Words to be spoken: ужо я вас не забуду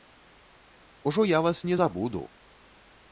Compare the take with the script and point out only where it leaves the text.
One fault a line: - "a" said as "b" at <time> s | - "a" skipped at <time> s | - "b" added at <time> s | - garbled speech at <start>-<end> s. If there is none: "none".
none